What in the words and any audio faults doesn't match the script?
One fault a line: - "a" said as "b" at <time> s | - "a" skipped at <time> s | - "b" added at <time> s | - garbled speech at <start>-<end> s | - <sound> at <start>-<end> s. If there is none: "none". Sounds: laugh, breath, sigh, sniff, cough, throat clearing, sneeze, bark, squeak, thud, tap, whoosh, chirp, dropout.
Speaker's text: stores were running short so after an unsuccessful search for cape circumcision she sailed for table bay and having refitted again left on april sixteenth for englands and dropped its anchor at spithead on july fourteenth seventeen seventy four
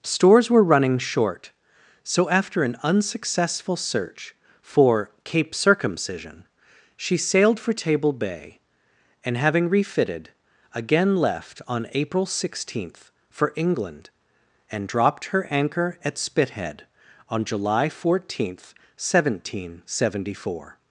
- "englands" said as "england" at 13.6 s
- "its" said as "her" at 15.2 s